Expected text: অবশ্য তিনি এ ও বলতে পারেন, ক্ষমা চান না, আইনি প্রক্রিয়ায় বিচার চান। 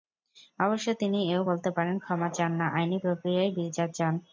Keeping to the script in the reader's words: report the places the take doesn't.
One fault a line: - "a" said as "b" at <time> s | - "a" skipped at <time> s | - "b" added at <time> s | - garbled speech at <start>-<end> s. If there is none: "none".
none